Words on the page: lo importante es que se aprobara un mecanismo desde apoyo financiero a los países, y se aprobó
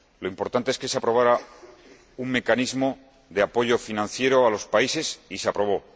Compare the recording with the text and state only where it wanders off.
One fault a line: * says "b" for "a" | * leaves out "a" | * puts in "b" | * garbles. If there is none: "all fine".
* says "de" for "desde"